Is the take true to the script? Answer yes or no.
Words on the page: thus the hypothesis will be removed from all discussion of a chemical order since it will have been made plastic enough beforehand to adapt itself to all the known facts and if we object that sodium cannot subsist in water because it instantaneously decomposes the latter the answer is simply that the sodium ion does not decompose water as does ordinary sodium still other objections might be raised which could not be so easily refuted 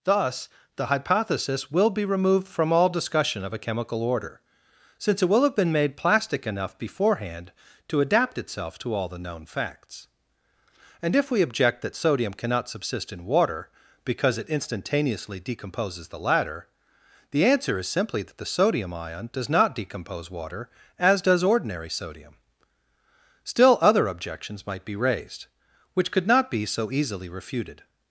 yes